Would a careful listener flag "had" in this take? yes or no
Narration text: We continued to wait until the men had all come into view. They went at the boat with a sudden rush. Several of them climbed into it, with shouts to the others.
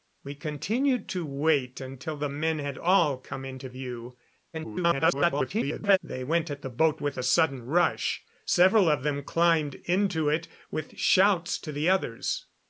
no